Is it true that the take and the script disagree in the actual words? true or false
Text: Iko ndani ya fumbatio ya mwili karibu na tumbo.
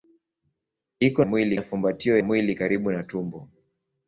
true